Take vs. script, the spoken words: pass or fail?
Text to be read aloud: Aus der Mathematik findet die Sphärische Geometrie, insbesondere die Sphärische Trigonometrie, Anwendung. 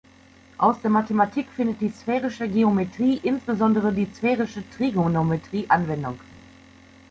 pass